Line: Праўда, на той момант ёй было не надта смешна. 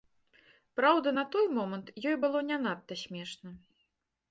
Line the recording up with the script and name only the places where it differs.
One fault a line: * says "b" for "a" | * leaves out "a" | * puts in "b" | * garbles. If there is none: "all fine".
all fine